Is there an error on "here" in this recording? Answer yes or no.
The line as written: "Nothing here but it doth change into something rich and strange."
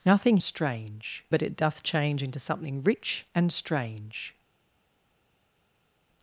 yes